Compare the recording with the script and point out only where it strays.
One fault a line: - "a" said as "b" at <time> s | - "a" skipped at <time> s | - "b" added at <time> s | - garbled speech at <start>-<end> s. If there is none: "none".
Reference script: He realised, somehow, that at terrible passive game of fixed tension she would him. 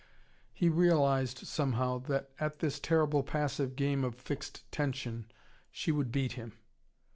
- "this" added at 2.6 s
- "beat" added at 6.1 s